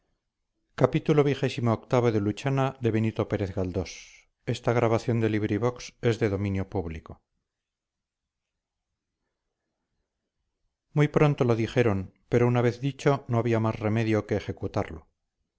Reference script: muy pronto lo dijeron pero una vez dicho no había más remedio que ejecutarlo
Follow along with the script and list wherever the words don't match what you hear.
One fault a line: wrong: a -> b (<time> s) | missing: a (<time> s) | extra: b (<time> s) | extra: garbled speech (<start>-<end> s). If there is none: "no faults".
no faults